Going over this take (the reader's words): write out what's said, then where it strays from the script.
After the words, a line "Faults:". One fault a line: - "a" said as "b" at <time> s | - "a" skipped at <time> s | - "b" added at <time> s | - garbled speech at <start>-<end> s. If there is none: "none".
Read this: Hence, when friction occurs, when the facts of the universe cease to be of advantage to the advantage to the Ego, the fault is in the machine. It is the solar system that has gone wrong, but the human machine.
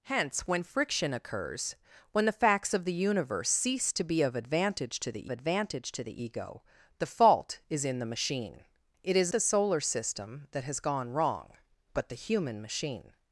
Hence, when friction occurs, when the facts of the universe cease to be of advantage to the advantage to the Ego, the fault is in the machine. It is the solar system that has gone wrong, but the human machine.
Faults:
none